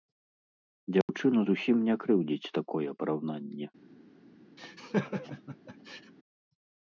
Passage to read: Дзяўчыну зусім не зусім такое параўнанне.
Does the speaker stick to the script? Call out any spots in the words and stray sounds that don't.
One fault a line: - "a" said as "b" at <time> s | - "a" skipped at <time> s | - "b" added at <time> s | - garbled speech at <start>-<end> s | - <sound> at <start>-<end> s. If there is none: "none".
- dropout at 1.0-1.1 s
- "зусім" said as "крыўдзіць" at 2.0 s
- laugh at 4.6-6.1 s